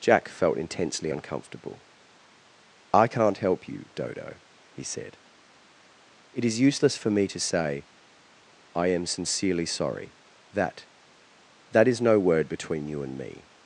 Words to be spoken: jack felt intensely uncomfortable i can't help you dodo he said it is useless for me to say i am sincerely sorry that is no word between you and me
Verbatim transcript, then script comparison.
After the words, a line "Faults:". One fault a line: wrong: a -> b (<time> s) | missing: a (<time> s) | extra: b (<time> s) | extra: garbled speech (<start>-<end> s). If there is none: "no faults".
jack felt intensely uncomfortable i can't help you dodo he said it is useless for me to say i am sincerely sorry that that is no word between you and me
Faults:
extra: that (11.7 s)